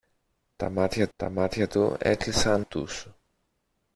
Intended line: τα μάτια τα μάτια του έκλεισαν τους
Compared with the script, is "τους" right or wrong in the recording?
right